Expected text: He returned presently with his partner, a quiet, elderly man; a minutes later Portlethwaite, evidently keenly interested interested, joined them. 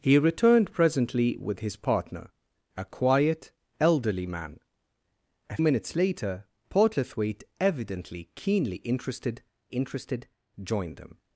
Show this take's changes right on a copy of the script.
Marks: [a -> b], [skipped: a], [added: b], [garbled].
He returned presently with his partner, a quiet, elderly man; a minutes later Portlethwaite, evidently keenly interested interested, joined them.